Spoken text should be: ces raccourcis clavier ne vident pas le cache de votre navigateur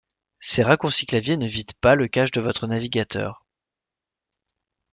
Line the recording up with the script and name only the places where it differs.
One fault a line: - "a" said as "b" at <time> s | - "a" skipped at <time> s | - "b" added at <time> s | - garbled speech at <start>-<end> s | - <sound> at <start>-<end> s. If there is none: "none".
none